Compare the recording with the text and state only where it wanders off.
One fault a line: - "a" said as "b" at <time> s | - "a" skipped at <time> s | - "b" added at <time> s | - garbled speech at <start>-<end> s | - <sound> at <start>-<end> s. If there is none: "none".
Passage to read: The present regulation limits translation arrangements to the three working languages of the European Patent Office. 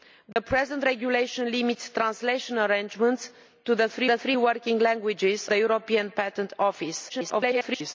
- dropout at 0.3-0.4 s
- "the three" added at 4.0 s
- "of" skipped at 5.5 s
- garbled speech at 7.1-7.9 s